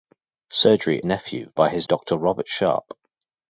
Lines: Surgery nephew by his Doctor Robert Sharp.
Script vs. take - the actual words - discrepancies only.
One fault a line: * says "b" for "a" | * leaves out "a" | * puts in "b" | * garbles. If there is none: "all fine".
all fine